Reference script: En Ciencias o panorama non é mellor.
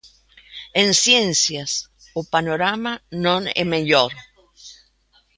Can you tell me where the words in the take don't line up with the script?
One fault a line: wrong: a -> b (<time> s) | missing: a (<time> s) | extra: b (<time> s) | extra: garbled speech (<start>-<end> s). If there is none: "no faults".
no faults